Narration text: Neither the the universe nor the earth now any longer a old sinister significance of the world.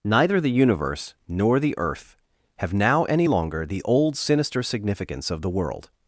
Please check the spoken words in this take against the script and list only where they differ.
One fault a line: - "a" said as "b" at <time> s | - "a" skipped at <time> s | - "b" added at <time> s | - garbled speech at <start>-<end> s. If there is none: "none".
- "the" skipped at 0.5 s
- "have" added at 2.5 s
- "a" said as "the" at 3.6 s